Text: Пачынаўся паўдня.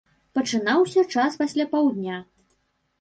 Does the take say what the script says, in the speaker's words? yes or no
no